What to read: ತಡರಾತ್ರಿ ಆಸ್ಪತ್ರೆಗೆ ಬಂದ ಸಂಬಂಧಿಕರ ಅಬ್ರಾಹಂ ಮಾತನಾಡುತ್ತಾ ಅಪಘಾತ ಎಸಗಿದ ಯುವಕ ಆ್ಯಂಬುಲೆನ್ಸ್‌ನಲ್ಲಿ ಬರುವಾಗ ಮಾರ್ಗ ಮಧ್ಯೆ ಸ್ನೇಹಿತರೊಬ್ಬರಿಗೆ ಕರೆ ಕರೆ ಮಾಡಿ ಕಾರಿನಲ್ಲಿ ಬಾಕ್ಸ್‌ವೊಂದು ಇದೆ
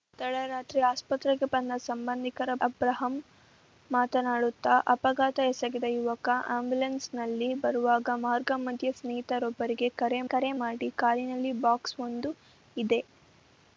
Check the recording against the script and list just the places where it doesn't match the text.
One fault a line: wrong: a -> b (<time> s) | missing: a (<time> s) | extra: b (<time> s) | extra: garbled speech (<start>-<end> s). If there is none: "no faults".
no faults